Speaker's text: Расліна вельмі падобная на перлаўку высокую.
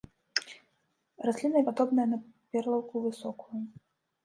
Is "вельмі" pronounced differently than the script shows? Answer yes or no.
yes